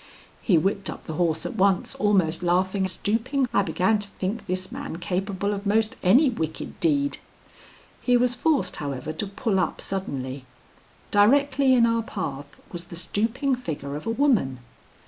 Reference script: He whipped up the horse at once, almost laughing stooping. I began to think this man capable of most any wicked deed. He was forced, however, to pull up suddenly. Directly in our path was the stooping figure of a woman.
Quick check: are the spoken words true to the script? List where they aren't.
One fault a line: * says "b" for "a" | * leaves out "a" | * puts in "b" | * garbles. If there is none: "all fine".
all fine